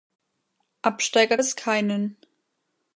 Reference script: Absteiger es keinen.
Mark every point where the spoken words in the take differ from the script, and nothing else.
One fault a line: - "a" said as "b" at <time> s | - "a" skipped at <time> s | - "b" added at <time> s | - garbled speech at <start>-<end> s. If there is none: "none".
none